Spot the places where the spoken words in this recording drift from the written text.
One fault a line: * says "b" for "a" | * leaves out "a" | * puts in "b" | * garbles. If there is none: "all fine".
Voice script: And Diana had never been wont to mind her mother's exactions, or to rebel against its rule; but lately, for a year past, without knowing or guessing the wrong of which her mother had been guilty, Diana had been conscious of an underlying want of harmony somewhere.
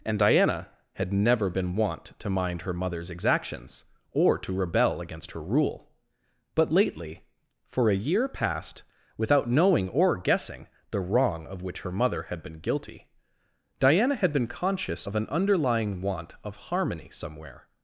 * says "her" for "its"